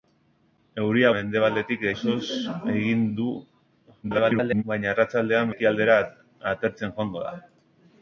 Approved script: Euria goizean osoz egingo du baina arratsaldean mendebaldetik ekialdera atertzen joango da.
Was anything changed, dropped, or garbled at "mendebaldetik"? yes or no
yes